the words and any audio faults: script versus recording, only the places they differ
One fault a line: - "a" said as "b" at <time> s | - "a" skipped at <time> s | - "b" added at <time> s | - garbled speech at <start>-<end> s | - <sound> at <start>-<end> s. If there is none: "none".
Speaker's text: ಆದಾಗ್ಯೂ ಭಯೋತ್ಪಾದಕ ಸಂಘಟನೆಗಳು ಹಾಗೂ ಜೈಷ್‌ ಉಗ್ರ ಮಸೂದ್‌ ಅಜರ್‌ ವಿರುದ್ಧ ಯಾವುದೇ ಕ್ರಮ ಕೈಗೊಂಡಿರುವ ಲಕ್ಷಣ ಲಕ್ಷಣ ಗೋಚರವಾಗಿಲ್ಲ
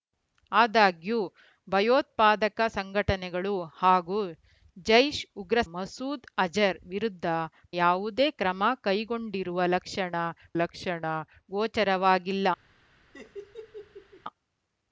- laugh at 13.1-14.2 s